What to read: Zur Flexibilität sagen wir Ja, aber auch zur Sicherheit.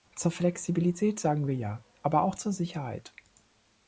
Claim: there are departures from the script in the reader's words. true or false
false